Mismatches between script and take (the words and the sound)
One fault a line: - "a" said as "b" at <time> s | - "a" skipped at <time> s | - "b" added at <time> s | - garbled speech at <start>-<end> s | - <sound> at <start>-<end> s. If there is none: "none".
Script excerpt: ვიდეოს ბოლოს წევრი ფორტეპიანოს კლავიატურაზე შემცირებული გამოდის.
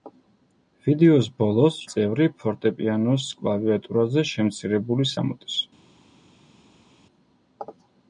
none